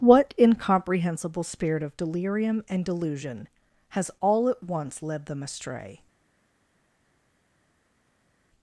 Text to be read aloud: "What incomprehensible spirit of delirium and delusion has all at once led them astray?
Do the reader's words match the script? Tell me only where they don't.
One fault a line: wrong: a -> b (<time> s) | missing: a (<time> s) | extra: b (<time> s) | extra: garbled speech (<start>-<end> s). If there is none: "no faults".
no faults